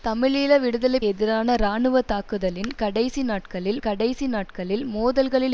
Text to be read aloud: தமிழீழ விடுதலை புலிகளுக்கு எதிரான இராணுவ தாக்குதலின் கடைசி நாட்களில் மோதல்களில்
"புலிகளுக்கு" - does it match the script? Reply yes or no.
no